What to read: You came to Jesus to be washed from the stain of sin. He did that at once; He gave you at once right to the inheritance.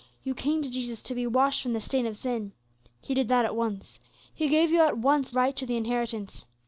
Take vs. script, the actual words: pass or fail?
pass